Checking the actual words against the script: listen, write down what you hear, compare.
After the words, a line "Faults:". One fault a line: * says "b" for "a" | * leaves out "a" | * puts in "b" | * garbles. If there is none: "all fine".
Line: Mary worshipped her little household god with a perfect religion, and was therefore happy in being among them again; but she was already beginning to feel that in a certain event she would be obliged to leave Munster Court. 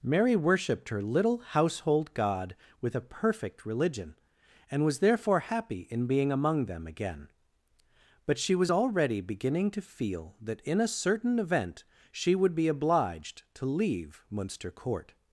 Mary worshipped her little household god with a perfect religion, and was therefore happy in being among them again; but she was already beginning to feel that in a certain event she would be obliged to leave Munster Court.
Faults:
all fine